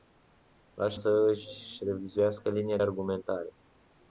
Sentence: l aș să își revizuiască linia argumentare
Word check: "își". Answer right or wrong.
right